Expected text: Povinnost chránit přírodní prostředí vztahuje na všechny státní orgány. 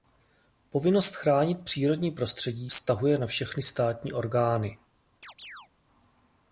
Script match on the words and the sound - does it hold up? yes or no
no